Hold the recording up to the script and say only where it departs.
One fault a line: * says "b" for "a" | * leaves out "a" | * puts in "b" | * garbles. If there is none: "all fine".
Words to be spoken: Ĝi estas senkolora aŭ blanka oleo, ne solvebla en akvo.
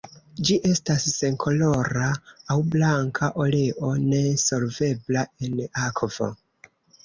all fine